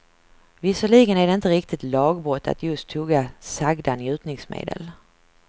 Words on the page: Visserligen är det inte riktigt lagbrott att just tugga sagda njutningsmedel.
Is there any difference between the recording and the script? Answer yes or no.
no